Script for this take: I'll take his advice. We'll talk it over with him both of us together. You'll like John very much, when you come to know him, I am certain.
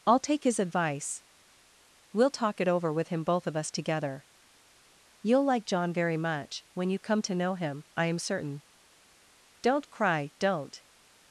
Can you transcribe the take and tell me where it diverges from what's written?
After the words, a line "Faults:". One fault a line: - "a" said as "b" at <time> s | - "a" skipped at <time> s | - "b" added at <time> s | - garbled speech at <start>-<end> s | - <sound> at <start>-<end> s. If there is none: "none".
I'll take his advice. We'll talk it over with him both of us together. You'll like John very much, when you come to know him, I am certain. Don't cry, don't
Faults:
- "Don't cry don't" added at 9.6 s